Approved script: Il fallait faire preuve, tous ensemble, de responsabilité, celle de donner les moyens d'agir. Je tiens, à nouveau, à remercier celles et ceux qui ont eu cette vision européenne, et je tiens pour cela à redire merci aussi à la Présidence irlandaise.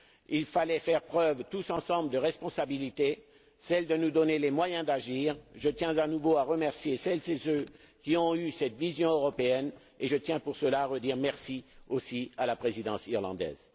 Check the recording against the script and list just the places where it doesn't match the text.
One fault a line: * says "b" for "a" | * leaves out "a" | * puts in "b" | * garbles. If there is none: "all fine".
* puts in "nous"